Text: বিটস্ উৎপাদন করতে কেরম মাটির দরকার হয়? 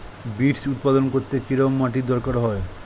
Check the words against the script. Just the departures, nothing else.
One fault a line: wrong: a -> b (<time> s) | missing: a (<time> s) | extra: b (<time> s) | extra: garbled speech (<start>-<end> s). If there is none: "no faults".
no faults